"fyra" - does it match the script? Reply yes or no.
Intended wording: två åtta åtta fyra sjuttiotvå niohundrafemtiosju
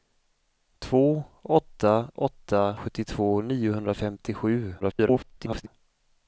no